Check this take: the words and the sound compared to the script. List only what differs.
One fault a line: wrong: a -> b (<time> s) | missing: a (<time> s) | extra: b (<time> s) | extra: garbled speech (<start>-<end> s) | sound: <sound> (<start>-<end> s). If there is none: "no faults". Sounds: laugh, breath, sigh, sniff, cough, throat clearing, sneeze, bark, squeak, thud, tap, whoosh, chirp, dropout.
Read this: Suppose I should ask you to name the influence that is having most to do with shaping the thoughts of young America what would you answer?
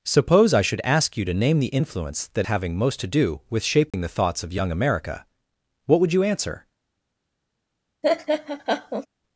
missing: is (2.5 s)
sound: dropout (3.9-3.9 s)
sound: laugh (8.0-9.1 s)